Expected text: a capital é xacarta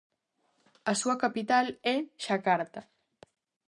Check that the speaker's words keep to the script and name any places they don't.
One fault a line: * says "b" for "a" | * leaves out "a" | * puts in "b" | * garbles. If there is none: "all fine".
* puts in "súa"